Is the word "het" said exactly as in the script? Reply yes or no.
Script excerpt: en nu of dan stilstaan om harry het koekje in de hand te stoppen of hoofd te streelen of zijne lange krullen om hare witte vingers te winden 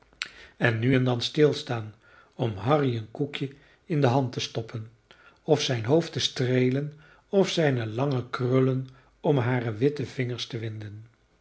no